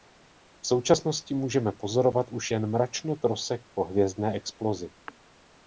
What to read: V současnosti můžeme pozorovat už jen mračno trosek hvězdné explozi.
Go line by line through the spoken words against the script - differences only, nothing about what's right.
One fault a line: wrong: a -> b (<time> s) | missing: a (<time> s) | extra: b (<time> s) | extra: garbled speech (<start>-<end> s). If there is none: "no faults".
extra: po (3.7 s)